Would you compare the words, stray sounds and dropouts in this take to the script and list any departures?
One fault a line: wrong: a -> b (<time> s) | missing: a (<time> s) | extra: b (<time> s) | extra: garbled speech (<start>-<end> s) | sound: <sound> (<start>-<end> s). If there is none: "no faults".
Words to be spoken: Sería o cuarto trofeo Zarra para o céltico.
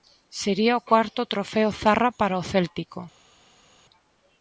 no faults